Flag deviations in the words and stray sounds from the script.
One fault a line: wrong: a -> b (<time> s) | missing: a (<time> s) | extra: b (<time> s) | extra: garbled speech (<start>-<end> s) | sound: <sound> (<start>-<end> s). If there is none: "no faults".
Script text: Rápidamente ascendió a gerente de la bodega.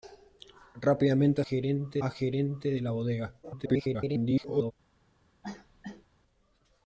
wrong: ascendió -> gerente (1.4 s)
extra: garbled speech (3.4-4.7 s)
sound: cough (5.4-6.1 s)